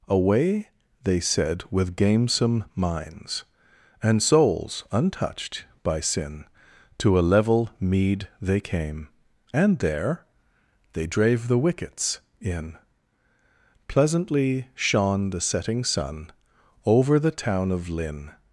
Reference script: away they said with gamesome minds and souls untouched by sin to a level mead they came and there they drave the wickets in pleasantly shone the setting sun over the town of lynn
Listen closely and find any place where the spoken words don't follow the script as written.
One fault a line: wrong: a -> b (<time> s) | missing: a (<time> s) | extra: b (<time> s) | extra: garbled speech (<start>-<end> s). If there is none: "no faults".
no faults